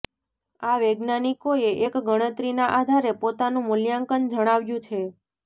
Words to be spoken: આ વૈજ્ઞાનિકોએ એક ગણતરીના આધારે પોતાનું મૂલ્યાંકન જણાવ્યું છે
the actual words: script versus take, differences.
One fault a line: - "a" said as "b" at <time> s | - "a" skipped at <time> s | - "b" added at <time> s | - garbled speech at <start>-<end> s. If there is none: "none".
none